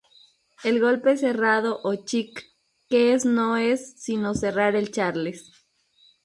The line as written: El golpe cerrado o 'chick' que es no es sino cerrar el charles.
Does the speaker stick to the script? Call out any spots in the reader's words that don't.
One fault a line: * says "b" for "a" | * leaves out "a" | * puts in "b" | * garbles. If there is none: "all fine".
all fine